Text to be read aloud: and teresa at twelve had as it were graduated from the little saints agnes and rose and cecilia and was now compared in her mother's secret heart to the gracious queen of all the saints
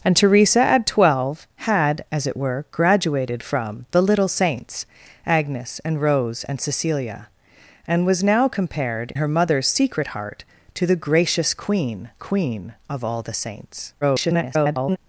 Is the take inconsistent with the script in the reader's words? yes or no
yes